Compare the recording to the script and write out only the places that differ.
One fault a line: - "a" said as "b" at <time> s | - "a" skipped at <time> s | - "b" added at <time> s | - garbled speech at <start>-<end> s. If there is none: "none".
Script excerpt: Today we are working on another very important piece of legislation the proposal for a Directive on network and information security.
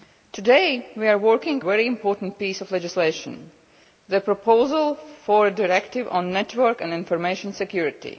- "on another" skipped at 1.6 s